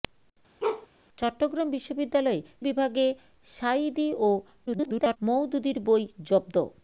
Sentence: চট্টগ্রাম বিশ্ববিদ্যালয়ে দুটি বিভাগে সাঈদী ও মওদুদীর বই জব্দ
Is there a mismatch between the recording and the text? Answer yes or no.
yes